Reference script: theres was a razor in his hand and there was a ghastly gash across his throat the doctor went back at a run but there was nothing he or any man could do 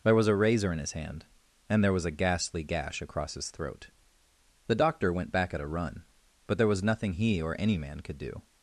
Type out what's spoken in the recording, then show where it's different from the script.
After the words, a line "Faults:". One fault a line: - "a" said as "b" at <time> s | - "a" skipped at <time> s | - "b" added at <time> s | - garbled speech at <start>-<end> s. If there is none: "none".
there was a razor in his hand and there was a ghastly gash across his throat the doctor went back at a run but there was nothing he or any man could do
Faults:
- "theres" said as "there" at 0.0 s